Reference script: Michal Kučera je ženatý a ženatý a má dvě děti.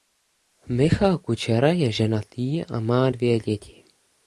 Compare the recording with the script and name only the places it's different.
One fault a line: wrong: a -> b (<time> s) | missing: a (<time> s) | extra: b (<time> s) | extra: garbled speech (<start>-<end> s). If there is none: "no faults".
missing: ženatý a (2.8 s)